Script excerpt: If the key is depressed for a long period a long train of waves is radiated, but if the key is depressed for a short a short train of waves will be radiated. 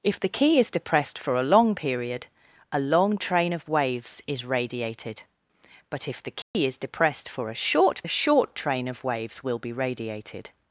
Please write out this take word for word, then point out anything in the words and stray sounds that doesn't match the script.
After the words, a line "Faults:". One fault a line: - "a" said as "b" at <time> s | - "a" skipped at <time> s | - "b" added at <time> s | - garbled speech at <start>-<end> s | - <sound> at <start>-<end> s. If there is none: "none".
If the key is depressed for a long period a long train of waves is radiated, but if the key is depressed for a short a short train of waves will be radiated.
Faults:
- dropout at 6.4-6.5 s